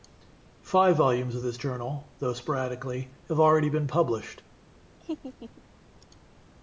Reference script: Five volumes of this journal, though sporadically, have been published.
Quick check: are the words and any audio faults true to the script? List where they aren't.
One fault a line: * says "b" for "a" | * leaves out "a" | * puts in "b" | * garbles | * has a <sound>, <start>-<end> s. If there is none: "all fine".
* puts in "already"
* has a laugh, 5.0-5.6 s